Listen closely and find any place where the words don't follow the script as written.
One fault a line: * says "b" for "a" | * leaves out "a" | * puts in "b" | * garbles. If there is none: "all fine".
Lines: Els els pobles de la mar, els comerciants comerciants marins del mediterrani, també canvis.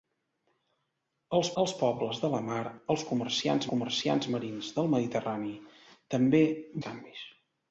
all fine